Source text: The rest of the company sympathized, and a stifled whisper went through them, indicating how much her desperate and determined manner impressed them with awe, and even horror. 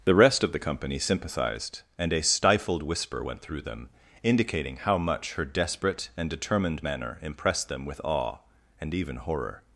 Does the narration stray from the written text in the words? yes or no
no